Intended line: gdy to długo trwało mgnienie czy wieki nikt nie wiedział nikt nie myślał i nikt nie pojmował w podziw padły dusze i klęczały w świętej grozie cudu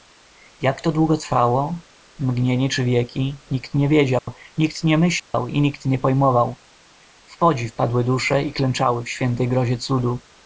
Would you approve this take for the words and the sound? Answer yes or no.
no